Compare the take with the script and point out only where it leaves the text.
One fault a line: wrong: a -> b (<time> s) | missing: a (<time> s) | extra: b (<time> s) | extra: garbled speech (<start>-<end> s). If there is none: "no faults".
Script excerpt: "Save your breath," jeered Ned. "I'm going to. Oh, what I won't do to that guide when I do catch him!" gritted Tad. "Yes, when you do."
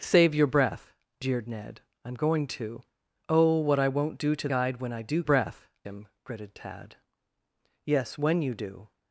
missing: that (4.5 s)
wrong: catch -> breath (5.2 s)